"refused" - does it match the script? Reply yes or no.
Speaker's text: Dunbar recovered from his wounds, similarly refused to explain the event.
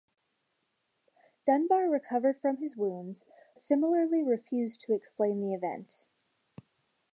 yes